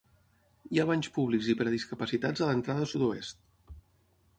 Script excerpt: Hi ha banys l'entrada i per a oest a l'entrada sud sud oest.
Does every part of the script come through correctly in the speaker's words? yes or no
no